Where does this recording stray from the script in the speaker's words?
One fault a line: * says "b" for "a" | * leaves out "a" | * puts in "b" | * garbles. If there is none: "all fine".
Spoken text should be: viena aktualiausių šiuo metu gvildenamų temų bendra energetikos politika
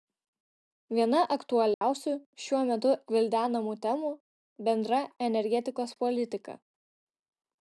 all fine